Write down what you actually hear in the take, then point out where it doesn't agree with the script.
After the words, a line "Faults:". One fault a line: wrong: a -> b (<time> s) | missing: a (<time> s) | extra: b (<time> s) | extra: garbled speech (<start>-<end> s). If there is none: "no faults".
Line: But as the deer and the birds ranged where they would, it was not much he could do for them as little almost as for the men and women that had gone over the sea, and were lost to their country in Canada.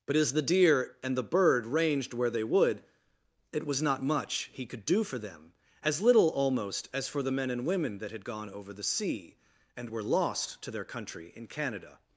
But as the deer and the bird ranged where they would, it was not much he could do for them as little almost as for the men and women that had gone over the sea, and were lost to their country in Canada.
Faults:
wrong: birds -> bird (1.2 s)